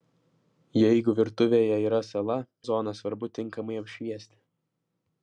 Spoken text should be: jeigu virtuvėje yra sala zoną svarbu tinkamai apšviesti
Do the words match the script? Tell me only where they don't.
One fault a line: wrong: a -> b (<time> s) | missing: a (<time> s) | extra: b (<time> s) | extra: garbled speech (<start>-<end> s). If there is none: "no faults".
no faults